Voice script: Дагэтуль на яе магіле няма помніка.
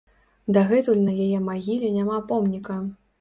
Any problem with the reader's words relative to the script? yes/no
no